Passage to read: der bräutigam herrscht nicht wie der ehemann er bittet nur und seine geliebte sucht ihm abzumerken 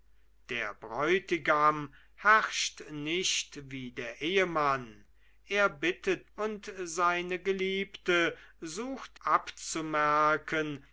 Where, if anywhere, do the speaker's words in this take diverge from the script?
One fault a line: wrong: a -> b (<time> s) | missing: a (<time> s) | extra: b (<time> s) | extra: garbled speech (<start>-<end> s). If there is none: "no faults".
missing: nur (6.3 s)
missing: ihm (9.2 s)